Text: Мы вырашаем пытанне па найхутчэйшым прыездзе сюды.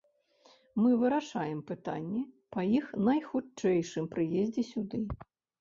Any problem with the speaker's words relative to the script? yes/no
yes